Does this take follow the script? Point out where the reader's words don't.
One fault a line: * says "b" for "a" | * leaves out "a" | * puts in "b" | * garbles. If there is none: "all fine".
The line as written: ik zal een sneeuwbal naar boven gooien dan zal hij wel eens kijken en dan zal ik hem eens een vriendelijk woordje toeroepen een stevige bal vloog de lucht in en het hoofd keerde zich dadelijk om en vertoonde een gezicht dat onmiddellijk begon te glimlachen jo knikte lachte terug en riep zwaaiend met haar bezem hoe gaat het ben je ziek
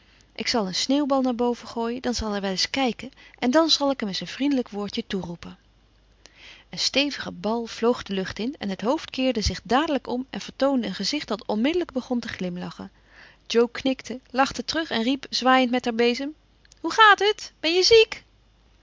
all fine